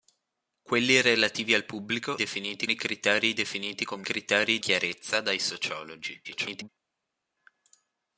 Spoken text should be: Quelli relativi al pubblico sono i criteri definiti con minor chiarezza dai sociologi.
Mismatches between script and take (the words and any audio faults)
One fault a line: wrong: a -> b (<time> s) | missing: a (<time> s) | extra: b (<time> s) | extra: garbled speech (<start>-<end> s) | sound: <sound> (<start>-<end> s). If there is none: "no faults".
wrong: sono -> definiti (2.1 s)
wrong: minor -> criteri (4.0 s)
extra: garbled speech (6.2-6.7 s)